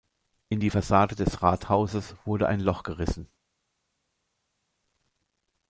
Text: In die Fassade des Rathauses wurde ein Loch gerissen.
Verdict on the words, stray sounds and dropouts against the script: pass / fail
pass